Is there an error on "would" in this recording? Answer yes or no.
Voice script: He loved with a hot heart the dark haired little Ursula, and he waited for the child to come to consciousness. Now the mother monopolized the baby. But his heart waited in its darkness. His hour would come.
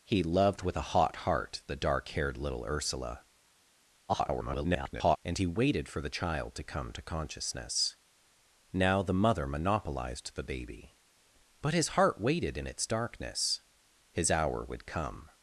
no